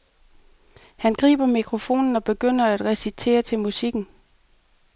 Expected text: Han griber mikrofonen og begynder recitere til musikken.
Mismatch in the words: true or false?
true